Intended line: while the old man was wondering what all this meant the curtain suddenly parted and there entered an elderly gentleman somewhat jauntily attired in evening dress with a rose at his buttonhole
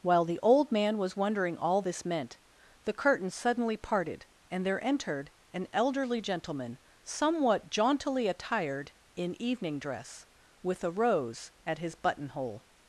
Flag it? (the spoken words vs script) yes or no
yes